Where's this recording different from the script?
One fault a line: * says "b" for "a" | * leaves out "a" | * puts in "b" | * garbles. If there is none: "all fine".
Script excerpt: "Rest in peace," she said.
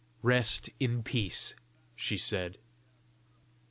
all fine